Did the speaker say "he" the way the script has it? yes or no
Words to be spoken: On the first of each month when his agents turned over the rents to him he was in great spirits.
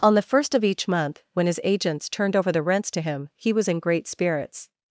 yes